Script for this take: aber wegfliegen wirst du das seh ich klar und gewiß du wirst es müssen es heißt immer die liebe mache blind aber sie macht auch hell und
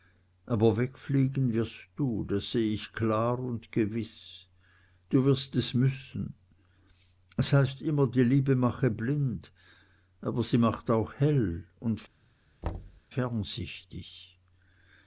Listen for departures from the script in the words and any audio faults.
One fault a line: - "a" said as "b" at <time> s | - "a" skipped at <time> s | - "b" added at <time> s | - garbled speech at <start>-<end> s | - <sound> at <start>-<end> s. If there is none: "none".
- thud at 12.6-13.0 s